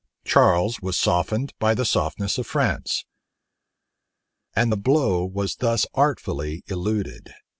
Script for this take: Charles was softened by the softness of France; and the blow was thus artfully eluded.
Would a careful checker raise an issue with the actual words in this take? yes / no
no